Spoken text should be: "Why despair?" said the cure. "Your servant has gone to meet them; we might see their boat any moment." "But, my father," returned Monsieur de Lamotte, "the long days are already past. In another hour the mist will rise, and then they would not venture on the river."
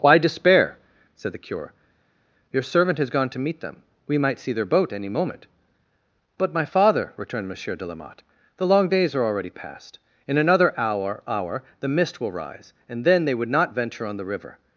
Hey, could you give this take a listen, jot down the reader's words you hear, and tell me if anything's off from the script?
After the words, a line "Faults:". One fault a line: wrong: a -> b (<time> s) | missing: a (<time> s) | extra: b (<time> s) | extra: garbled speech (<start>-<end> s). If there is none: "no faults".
"Why despair?" said the cure. "Your servant has gone to meet them; we might see their boat any moment." "But, my father," returned Monsieur de Lamotte, "the long days are already past. In another hour hour the mist will rise, and then they would not venture on the river."
Faults:
extra: hour (11.3 s)